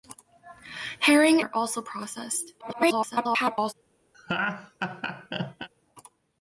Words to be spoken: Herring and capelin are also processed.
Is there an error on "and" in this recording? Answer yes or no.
yes